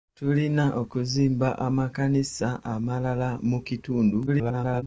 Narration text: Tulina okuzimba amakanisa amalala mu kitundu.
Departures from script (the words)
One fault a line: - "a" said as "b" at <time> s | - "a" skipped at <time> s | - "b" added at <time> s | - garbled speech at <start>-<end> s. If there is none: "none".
- garbled speech at 4.3-4.8 s